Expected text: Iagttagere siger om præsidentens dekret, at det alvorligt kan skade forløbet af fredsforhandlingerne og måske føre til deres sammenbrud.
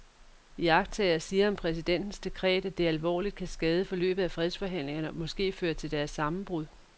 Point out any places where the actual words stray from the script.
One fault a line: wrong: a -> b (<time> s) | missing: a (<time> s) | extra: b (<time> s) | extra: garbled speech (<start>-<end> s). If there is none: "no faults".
no faults